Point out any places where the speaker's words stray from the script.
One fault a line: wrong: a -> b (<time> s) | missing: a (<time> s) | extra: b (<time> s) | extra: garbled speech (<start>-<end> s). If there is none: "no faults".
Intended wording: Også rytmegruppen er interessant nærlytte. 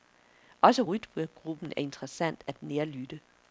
extra: at (2.5 s)